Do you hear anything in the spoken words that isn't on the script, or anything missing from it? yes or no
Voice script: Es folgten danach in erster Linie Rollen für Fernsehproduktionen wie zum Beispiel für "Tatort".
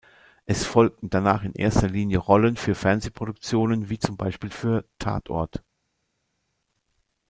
no